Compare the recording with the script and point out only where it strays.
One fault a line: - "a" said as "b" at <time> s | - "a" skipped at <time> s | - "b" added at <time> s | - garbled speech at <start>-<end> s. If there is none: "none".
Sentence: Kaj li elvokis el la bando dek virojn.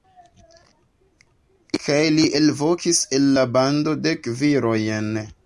none